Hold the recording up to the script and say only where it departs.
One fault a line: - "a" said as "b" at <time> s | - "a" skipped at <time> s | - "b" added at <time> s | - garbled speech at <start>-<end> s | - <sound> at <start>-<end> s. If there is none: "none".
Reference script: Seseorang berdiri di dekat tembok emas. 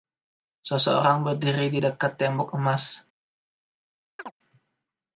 - chirp at 4.2-4.3 s